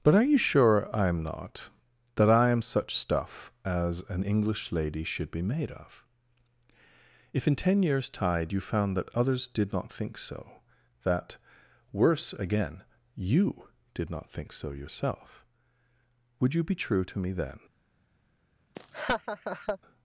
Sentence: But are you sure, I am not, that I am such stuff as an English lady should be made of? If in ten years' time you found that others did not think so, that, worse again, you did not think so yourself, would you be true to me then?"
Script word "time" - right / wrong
wrong